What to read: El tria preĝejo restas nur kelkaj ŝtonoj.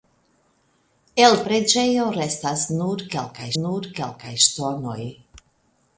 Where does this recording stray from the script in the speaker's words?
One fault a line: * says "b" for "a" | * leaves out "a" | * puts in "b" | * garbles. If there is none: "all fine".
* leaves out "tria"
* puts in "nur kelkaj"